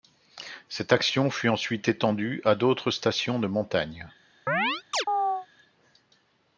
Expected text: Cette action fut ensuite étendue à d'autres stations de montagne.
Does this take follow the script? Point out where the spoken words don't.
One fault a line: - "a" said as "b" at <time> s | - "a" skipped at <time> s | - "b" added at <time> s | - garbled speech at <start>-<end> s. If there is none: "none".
none